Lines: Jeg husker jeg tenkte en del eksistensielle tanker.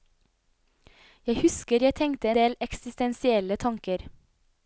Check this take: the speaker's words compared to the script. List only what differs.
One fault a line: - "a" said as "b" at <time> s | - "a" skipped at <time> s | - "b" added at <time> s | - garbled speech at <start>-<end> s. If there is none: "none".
- "en" skipped at 2.3 s